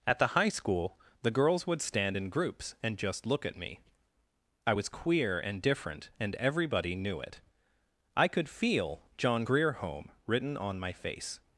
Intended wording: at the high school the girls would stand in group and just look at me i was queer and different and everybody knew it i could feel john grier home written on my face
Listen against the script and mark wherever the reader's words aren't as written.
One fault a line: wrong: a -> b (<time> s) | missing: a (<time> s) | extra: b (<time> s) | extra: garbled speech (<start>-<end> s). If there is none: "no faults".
wrong: group -> groups (2.3 s)